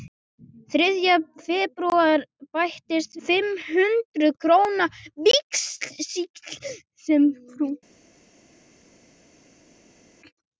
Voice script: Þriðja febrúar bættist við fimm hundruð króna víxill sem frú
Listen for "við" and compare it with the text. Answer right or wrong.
wrong